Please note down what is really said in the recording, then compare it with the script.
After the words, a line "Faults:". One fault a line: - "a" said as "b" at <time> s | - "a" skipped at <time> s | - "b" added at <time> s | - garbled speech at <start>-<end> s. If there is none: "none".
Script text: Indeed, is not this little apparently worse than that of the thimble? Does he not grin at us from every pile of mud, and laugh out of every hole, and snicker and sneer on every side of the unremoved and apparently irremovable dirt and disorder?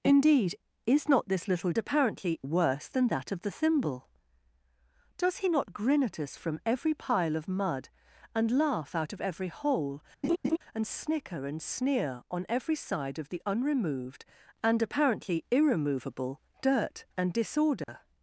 Indeed, is not this little apparently worse than that of the thimble? Does he not grin at us from every pile of mud, and laugh out of every hole, and snicker and sneer on every side of the unremoved and apparently irremovable dirt and disorder?
Faults:
none